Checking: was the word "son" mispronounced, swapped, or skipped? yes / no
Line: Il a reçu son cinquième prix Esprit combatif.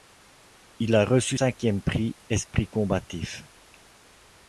yes